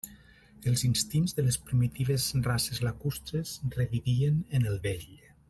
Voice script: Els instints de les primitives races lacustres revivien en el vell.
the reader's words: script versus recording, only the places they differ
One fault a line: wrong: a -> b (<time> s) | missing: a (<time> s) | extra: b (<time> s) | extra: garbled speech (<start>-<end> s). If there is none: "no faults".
no faults